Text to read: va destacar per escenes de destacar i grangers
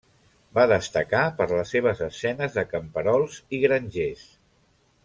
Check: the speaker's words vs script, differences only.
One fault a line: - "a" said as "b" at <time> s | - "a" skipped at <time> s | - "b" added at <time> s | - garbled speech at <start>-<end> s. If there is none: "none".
- "les seves" added at 1.5 s
- "destacar" said as "camperols" at 2.7 s